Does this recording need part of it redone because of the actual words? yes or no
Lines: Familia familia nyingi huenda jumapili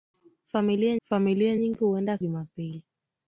no